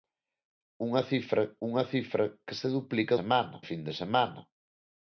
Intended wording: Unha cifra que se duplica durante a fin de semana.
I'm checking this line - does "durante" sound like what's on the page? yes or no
no